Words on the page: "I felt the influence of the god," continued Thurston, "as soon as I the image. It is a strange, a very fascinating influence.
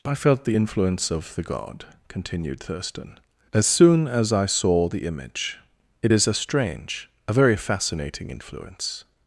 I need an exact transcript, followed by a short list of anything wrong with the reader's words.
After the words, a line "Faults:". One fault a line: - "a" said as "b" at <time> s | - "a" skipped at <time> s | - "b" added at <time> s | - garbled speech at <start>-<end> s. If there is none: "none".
"I felt the influence of the god," continued Thurston, "as soon as I saw the image. It is a strange, a very fascinating influence.
Faults:
- "saw" added at 4.5 s